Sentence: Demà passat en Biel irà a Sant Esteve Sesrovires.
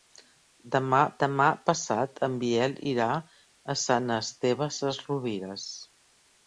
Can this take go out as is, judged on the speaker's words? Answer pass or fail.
fail